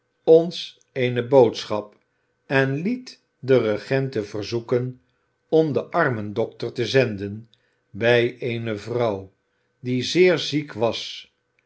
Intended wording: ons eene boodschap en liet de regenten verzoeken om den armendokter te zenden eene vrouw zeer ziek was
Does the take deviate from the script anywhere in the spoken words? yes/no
yes